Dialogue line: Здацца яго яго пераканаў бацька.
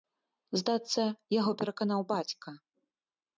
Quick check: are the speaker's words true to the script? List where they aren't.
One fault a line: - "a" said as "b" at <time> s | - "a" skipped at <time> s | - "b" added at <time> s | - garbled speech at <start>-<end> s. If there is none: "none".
- "яго" skipped at 1.5 s